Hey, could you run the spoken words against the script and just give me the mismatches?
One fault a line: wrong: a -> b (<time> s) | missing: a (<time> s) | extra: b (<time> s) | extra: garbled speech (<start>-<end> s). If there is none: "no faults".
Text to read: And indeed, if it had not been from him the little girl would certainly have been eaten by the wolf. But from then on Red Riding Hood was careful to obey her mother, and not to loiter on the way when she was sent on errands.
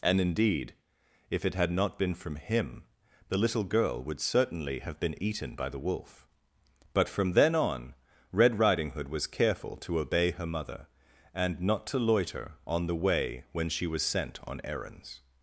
no faults